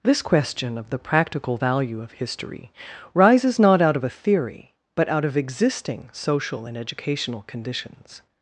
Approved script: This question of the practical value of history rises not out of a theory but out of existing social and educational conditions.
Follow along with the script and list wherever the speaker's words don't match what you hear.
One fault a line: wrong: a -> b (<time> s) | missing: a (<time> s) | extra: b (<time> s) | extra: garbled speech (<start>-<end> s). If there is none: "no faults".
no faults